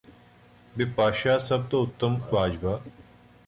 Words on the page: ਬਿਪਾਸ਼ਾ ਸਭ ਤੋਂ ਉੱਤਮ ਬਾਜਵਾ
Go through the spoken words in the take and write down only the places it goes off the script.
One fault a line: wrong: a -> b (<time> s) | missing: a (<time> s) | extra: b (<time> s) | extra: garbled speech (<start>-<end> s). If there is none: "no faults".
no faults